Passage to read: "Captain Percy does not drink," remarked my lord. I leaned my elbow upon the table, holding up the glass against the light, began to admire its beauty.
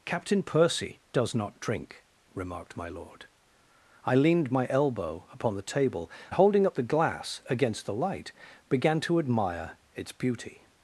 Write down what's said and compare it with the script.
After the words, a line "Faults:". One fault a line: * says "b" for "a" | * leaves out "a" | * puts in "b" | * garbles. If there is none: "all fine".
"Captain Percy does not drink," remarked my lord. I leaned my elbow upon the table, holding up the glass against the light, began to admire its beauty.
Faults:
all fine